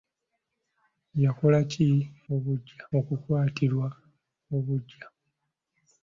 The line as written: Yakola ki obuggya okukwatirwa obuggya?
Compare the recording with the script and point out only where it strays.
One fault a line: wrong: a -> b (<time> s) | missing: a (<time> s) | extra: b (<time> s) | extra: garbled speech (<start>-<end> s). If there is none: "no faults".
no faults